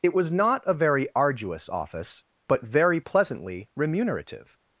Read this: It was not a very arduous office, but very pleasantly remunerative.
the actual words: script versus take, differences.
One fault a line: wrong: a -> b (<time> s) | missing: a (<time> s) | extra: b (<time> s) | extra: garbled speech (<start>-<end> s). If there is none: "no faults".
no faults